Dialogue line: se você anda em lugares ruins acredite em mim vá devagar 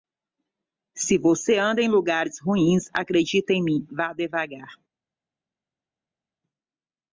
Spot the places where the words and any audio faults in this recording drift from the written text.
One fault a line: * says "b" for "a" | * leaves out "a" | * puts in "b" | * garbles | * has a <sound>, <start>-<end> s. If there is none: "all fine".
all fine